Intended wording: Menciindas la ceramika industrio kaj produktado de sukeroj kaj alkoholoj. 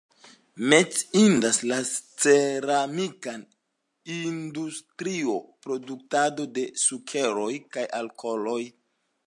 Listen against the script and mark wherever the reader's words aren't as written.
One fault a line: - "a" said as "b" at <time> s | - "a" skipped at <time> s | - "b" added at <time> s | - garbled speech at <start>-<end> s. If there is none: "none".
- "kaj" skipped at 5.3 s